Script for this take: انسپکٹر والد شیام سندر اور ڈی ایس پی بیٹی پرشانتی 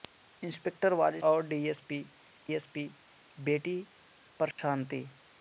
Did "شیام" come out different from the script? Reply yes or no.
yes